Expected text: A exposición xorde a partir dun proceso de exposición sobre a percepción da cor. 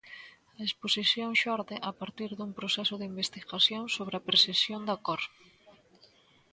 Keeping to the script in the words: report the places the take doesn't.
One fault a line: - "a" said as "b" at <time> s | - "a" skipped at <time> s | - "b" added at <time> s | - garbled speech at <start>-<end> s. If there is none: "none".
- "exposición" said as "investigación" at 3.1 s